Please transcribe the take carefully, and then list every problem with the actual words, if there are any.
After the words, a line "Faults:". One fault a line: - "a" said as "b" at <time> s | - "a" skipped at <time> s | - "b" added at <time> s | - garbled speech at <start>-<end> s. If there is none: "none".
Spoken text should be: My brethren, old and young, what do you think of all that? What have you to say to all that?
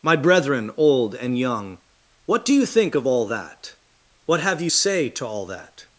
My brethren, old and young, what do you think of all that? What have you say to all that?
Faults:
- "to" skipped at 4.7 s